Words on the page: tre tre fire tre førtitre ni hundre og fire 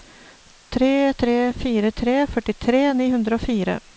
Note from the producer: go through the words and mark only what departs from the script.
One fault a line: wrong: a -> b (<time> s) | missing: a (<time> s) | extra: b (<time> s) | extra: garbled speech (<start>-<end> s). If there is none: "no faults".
no faults